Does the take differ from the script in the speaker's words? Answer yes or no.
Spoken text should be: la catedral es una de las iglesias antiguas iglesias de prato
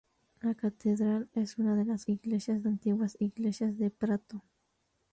no